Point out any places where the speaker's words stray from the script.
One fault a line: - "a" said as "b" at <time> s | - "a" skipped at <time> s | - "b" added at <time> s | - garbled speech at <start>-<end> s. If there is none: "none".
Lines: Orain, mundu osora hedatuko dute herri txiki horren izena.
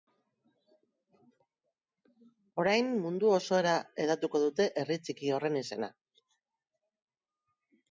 none